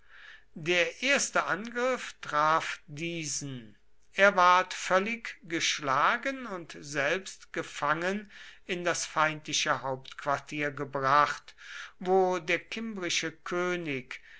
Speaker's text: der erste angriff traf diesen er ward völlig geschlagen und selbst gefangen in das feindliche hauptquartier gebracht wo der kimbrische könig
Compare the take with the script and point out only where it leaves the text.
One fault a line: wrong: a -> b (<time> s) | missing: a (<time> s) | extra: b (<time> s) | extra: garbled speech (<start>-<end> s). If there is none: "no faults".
no faults